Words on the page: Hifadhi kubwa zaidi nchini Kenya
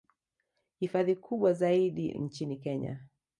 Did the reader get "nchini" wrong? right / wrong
right